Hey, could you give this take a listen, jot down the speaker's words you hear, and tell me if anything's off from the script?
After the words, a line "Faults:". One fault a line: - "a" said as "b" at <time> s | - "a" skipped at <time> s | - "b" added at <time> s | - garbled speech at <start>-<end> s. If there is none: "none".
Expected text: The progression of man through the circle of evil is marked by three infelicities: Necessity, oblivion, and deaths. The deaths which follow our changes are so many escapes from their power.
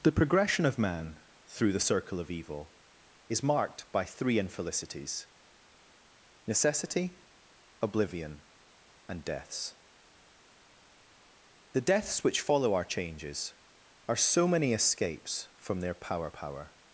The progression of man through the circle of evil is marked by three infelicities: Necessity, oblivion, and deaths. The deaths which follow our changes are so many escapes from their power power.
Faults:
- "power" added at 16.3 s